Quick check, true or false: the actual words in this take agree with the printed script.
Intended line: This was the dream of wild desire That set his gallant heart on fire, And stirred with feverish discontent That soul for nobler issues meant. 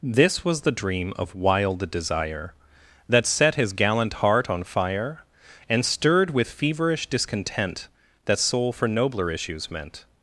true